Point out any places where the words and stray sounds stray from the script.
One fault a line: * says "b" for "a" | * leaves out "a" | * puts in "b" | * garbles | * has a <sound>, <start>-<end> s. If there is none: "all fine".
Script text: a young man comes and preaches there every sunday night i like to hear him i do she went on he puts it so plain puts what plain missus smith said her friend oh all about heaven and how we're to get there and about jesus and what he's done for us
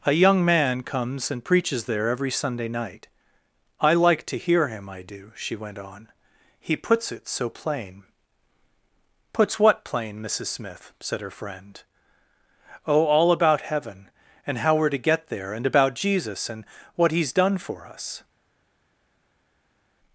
all fine